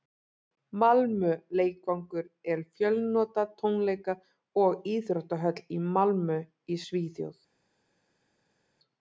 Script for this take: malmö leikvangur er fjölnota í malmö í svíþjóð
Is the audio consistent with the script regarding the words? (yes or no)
no